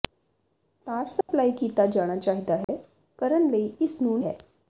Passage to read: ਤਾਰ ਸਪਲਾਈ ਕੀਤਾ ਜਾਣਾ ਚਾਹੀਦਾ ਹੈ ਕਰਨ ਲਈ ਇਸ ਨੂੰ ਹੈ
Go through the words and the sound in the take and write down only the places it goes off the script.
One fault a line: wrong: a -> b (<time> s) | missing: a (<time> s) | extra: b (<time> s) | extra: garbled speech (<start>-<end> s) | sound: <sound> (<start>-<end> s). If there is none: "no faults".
sound: dropout (1.2-1.3 s)
sound: dropout (2.6-2.7 s)